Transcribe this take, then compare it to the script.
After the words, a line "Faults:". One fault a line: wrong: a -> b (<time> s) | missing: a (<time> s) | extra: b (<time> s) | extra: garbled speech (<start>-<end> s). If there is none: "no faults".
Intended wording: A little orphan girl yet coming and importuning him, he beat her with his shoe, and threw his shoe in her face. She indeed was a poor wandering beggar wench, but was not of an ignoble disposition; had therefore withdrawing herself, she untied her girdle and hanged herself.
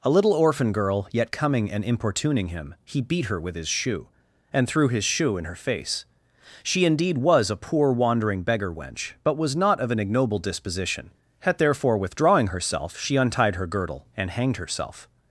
A little orphan girl yet coming and importuning him, he beat her with his shoe, and threw his shoe in her face. She indeed was a poor wandering beggar wench, but was not of an ignoble disposition; had therefore withdrawing herself, she untied her girdle and hanged herself.
Faults:
no faults